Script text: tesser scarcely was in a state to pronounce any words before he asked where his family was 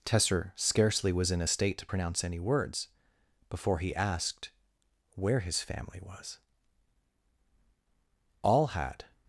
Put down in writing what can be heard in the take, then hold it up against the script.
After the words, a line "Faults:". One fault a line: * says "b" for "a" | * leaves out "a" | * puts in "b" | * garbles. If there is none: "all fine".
tesser scarcely was in a state to pronounce any words before he asked where his family was all had
Faults:
* puts in "all had"